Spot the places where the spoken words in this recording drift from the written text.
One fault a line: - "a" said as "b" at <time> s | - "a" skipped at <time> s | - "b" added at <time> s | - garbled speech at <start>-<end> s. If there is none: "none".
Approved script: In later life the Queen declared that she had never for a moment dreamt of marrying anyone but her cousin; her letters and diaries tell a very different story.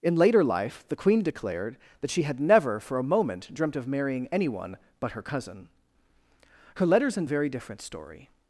- "diaries tell" skipped at 7.3 s